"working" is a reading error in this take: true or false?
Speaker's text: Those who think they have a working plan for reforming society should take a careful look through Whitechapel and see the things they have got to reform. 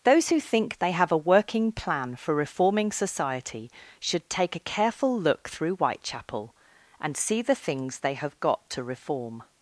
false